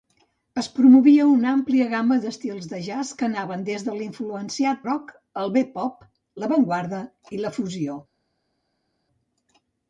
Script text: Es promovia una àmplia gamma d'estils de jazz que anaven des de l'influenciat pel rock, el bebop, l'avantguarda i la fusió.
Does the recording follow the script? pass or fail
fail